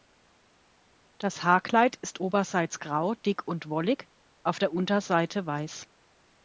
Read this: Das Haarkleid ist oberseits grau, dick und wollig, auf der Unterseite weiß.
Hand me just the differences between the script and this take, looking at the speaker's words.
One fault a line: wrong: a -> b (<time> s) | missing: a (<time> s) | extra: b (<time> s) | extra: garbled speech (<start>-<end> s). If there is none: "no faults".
no faults